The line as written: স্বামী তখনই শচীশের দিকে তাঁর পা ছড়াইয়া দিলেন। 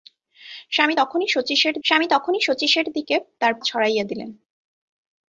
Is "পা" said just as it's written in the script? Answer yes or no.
no